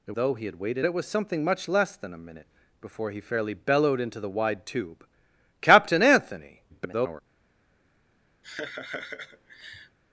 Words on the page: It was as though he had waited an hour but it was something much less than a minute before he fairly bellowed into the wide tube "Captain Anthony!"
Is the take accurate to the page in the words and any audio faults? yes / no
no